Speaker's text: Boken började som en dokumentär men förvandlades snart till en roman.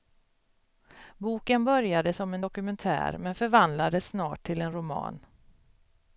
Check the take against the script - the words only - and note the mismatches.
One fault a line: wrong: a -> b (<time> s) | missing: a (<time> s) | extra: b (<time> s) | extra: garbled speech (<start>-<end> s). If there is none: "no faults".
no faults